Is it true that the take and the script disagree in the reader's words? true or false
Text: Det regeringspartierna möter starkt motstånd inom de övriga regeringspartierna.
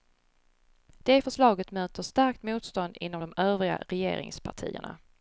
true